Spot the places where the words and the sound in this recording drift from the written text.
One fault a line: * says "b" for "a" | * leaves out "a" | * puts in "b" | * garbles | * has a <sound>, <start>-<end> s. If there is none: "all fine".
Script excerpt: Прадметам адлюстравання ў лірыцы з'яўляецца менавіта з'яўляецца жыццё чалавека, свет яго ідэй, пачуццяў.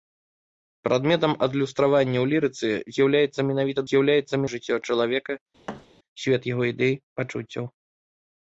* has a thud, 5.7-5.9 s